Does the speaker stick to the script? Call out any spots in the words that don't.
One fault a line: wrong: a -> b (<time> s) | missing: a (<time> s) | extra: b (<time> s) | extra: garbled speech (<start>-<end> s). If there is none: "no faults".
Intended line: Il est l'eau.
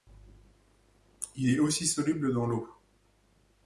extra: aussi soluble dans (1.6 s)